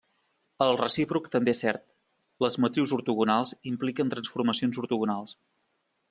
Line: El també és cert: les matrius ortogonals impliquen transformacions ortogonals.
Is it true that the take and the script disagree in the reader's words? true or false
true